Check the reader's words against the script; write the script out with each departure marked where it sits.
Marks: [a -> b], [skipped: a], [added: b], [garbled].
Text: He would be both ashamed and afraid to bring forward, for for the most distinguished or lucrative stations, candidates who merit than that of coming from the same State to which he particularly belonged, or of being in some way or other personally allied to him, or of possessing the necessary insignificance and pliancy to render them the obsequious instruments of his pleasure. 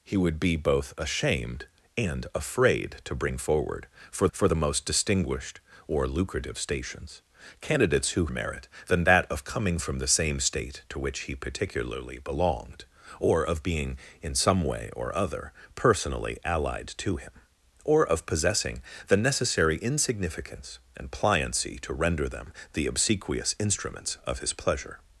He would be both ashamed and afraid to bring forward, for for the most distinguished or lucrative stations, candidates who merit than that of coming from the same State to which he particularly belonged, or of being in some way or other personally allied to him, or of possessing the necessary insignificance and pliancy to render them the obsequious instruments of his pleasure.